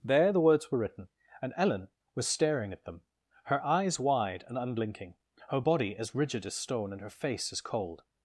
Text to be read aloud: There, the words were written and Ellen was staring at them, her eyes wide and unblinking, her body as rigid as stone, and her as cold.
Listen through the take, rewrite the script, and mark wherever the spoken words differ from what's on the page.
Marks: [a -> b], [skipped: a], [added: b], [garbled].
There, the words were written and Ellen was staring at them, her eyes wide and unblinking, her body as rigid as stone, and her [added: face] as cold.